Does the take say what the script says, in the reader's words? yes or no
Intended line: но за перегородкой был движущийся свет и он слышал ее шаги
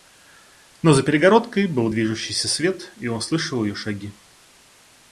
yes